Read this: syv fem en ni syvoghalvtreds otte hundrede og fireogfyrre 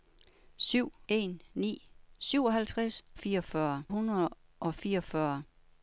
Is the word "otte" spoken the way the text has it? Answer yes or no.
no